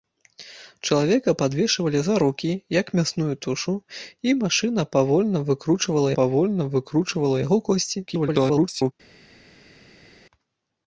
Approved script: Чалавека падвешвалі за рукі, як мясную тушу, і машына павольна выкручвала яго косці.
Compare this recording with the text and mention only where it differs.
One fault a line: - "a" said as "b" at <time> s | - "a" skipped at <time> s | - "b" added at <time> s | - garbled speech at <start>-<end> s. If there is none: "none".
- "павольна выкручвала" added at 6.2 s
- garbled speech at 8.1-8.9 s